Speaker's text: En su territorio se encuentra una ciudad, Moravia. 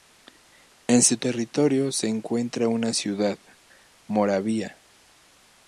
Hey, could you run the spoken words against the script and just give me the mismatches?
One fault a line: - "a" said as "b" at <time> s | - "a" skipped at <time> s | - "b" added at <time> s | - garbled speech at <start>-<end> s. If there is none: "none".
none